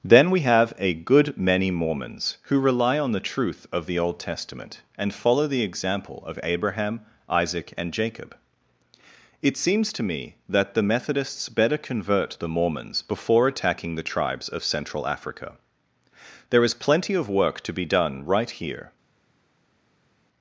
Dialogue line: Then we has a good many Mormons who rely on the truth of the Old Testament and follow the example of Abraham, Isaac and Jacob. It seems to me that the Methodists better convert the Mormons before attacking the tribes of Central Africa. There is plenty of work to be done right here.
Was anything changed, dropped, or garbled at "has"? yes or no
yes